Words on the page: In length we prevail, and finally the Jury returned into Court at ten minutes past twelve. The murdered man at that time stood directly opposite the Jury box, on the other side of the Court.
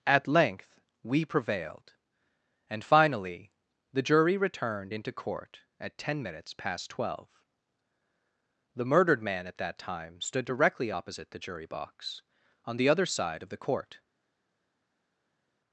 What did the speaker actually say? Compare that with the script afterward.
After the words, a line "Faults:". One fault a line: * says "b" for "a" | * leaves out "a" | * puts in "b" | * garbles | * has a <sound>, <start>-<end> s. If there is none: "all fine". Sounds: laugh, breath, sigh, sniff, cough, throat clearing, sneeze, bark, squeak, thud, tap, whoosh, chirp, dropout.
At length we prevailed, and finally the Jury returned into Court at ten minutes past twelve. The murdered man at that time stood directly opposite the Jury box, on the other side of the Court.
Faults:
* says "At" for "In"
* says "prevailed" for "prevail"